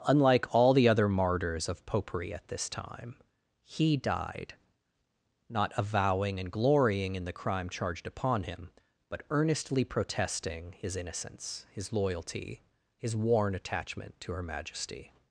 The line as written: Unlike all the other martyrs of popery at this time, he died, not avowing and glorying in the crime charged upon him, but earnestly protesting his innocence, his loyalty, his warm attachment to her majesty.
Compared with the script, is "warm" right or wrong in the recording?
wrong